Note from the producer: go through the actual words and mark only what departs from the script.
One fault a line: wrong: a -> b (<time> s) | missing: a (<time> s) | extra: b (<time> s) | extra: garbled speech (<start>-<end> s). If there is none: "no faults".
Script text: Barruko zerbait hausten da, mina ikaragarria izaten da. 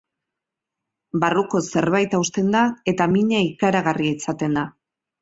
extra: eta (2.9 s)